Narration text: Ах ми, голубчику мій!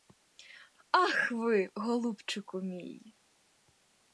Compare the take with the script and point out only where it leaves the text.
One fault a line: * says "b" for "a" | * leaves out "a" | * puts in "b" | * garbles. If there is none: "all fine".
* says "ви" for "ми"